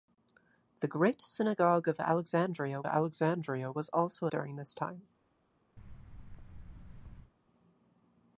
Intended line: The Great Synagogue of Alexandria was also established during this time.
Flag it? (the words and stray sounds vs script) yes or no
yes